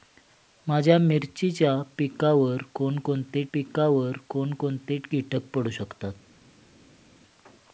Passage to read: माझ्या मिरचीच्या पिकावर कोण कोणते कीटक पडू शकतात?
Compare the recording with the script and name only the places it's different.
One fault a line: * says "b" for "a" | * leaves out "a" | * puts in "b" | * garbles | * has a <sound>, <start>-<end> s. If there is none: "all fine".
* puts in "पिकावर कोण कोणते"